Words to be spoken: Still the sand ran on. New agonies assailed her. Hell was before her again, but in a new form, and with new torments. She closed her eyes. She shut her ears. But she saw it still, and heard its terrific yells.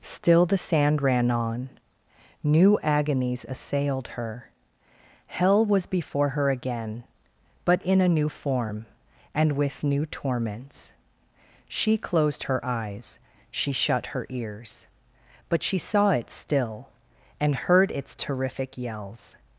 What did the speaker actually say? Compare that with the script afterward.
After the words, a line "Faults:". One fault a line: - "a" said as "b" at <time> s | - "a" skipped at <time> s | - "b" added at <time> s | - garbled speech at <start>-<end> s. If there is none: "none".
Still the sand ran on. New agonies assailed her. Hell was before her again, but in a new form, and with new torments. She closed her eyes. She shut her ears. But she saw it still, and heard its terrific yells.
Faults:
none